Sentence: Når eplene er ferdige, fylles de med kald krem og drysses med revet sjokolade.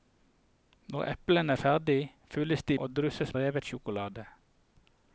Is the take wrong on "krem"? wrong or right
wrong